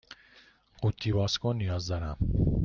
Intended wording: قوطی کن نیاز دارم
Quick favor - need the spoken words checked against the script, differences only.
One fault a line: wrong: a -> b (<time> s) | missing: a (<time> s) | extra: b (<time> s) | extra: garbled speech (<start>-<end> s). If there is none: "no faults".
extra: باز (1.1 s)